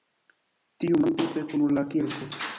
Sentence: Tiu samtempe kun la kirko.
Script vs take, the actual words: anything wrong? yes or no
no